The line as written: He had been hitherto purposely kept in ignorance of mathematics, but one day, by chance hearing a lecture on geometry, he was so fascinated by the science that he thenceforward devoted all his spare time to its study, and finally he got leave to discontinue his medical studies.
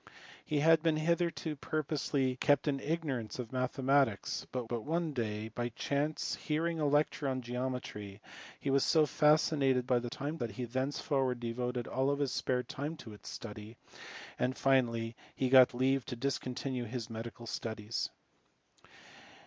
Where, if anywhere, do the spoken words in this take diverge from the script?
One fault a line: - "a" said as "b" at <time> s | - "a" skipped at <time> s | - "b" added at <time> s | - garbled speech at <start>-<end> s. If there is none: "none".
- "but" added at 4.7 s
- "science" said as "time" at 10.0 s